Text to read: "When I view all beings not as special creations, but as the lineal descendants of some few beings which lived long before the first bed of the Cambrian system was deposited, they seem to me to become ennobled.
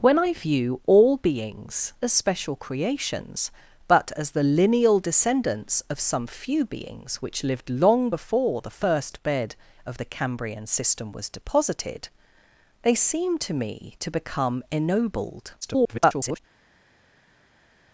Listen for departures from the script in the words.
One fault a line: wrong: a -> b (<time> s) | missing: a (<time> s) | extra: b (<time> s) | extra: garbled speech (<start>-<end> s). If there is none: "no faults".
missing: not (1.9 s)
extra: garbled speech (15.6-16.4 s)